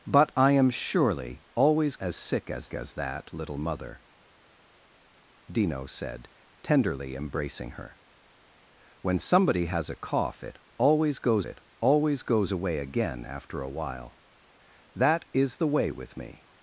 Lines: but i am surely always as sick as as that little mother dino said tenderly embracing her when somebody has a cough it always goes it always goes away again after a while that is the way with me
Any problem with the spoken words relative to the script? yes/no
no